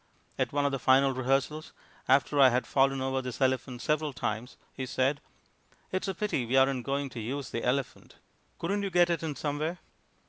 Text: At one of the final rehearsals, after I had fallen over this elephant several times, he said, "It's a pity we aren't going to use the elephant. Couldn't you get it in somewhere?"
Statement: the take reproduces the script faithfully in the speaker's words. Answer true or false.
true